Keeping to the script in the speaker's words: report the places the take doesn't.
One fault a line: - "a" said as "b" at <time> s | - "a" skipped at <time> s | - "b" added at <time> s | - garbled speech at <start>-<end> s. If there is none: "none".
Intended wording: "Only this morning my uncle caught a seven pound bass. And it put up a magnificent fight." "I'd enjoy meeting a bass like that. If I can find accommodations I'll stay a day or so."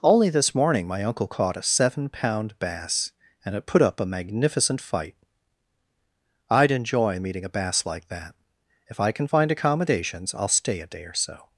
none